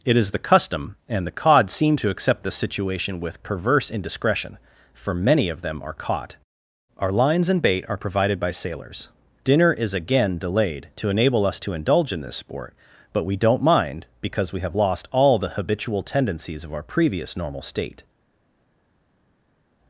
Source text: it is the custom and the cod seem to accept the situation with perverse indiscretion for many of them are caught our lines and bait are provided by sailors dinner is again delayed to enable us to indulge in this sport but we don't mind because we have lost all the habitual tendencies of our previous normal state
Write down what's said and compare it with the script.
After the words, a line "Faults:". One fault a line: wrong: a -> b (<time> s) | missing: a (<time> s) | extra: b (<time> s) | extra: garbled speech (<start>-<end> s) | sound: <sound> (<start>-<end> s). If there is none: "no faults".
it is the custom and the cod seem to accept the situation with perverse indiscretion for many of them are caught our lines and bait are provided by sailors dinner is again delayed to enable us to indulge in this sport but we don't mind because we have lost all the habitual tendencies of our previous normal state
Faults:
no faults